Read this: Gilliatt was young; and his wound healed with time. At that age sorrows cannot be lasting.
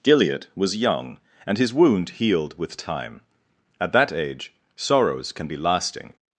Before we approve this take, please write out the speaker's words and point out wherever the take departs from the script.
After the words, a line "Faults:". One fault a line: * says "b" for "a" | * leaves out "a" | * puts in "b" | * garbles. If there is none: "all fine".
Gilliatt was young; and his wound healed with time. At that age sorrows can be lasting.
Faults:
* says "can" for "cannot"